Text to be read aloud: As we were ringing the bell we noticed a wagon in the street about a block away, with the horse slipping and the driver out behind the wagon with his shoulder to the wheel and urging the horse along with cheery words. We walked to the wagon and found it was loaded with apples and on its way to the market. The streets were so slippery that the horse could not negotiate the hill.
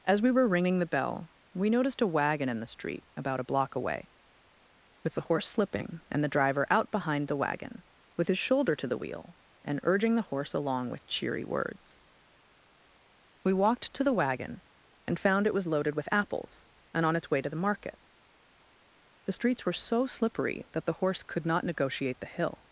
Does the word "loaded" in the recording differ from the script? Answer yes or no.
no